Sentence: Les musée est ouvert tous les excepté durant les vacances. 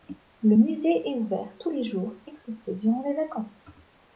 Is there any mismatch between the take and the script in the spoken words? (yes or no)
yes